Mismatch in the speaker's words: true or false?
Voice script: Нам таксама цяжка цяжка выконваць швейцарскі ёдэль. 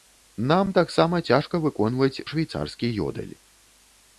true